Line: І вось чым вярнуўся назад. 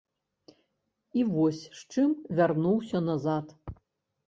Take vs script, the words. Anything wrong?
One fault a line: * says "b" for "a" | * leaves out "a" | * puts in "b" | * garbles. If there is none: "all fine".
* puts in "з"